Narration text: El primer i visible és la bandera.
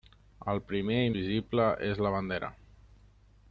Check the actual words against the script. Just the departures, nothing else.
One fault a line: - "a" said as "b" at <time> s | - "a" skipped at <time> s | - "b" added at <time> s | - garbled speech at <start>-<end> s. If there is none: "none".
none